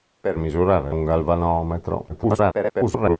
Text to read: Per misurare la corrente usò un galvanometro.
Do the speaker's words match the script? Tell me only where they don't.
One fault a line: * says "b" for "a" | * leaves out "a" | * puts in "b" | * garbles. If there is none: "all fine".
* leaves out "la corrente usò"
* garbles